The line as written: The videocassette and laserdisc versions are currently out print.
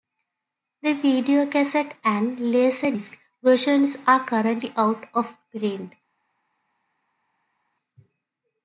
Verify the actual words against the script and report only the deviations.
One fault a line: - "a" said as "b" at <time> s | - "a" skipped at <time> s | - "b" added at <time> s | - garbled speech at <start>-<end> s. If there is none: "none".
- "of" added at 5.1 s